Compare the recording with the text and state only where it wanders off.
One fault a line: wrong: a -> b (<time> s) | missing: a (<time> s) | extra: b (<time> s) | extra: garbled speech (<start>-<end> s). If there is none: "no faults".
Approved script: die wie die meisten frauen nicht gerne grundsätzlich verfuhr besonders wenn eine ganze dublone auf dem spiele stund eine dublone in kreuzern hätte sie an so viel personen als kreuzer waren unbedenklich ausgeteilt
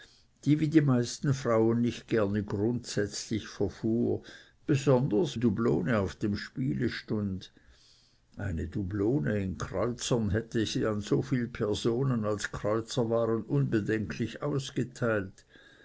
missing: wenn eine ganze (5.4 s)